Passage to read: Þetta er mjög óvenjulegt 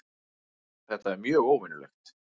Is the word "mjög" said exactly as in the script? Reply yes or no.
yes